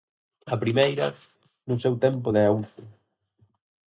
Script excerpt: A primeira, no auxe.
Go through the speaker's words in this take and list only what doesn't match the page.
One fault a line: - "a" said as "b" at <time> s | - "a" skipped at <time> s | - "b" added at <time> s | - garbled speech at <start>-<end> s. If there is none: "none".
- "seu tempo de" added at 1.8 s